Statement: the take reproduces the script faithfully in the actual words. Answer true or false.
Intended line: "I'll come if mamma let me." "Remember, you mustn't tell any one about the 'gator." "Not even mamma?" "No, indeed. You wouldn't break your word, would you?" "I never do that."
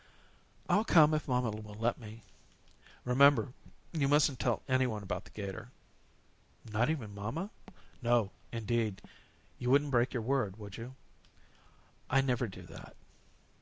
false